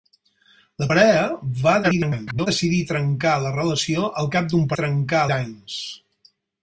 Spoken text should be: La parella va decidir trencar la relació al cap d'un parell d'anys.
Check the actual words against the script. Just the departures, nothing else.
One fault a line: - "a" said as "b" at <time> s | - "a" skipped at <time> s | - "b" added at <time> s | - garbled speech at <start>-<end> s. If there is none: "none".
- garbled speech at 1.8-2.5 s
- "parell" said as "trencar" at 4.8 s